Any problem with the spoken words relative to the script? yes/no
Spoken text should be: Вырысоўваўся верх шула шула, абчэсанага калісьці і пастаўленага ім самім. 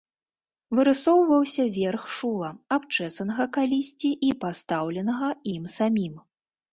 yes